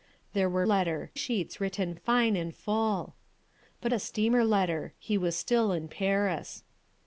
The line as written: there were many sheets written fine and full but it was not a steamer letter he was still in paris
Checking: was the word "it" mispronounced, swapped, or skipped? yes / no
yes